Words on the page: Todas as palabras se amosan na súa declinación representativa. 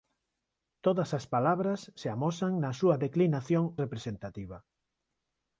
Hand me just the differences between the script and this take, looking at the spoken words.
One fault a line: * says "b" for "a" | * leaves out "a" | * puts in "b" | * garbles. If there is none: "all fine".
all fine